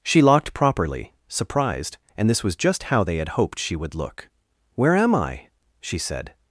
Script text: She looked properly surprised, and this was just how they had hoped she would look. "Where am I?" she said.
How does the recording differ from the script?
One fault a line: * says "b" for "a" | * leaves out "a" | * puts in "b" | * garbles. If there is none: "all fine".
* says "locked" for "looked"